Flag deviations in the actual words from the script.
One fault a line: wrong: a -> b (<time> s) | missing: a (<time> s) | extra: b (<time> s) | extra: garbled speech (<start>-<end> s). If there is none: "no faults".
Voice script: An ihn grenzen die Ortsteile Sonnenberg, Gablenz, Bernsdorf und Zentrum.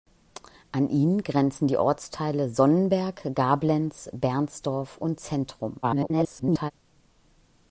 extra: garbled speech (5.8-6.7 s)